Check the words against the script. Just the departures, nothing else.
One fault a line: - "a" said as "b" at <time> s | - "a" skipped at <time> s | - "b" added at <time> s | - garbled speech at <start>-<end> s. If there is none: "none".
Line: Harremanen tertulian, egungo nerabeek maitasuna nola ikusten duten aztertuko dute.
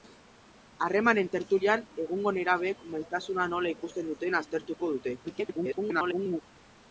- garbled speech at 5.2-6.4 s